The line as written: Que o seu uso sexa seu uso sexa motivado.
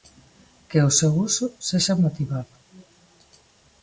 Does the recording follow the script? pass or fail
fail